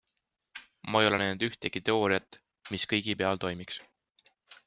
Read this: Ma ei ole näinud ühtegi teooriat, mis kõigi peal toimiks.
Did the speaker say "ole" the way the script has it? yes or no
yes